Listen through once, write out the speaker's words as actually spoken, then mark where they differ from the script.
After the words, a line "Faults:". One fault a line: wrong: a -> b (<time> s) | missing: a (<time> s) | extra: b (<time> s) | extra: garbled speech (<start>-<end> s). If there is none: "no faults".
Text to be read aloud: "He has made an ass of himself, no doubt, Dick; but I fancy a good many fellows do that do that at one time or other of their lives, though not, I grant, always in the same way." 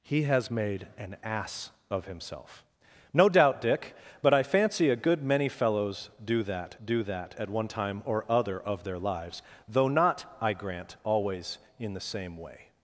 "He has made an ass of himself, no doubt, Dick; but I fancy a good many fellows do that do that at one time or other of their lives, though not, I grant, always in the same way."
Faults:
no faults